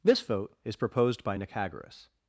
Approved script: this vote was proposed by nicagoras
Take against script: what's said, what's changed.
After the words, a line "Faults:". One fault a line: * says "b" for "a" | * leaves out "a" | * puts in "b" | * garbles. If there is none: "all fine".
this vote is proposed by nicagoras
Faults:
* says "is" for "was"